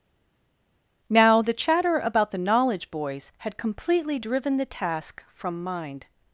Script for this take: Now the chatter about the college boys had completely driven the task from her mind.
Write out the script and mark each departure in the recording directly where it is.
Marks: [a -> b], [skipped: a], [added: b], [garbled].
Now the chatter about the [college -> knowledge] boys had completely driven the task from [skipped: her] mind.